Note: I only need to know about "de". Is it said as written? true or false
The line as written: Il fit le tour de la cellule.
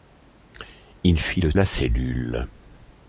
false